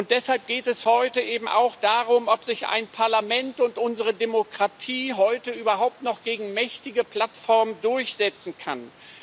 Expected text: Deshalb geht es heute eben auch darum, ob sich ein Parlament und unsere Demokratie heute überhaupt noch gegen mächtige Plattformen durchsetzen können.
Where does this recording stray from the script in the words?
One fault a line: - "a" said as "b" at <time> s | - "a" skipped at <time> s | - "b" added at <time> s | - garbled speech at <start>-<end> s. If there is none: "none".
none